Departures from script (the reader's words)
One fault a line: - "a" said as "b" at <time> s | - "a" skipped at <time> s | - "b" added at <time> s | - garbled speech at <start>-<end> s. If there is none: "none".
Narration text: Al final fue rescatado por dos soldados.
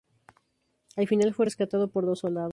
none